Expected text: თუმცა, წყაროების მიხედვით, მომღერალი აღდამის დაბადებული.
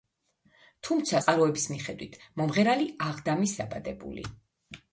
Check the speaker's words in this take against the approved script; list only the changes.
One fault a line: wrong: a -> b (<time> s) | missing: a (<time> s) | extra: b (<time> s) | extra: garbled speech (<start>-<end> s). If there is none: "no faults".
no faults